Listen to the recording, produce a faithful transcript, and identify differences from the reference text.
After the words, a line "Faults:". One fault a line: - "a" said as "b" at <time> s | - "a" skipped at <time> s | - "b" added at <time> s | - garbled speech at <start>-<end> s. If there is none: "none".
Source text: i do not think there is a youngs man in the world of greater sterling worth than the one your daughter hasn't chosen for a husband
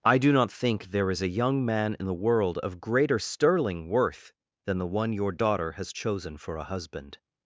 i do not think there is a young man in the world of greater sterling worth than the one your daughter has chosen for a husband
Faults:
- "youngs" said as "young" at 1.3 s
- "hasn't" said as "has" at 5.7 s